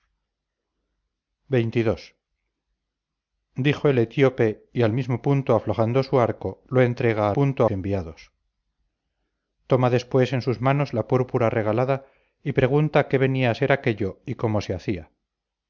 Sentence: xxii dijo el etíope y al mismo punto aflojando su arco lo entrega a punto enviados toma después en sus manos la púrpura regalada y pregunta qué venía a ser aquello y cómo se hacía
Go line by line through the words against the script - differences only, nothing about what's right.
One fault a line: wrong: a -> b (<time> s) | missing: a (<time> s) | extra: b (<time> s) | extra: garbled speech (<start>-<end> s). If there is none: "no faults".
no faults